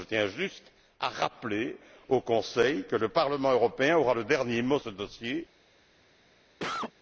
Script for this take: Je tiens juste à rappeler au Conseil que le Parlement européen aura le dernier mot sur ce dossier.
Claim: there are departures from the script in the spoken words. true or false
true